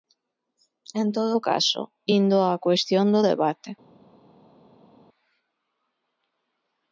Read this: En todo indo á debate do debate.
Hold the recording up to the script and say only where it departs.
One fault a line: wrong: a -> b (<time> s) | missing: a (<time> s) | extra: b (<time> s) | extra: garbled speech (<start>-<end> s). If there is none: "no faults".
extra: caso (1.5 s)
wrong: debate -> cuestión (2.7 s)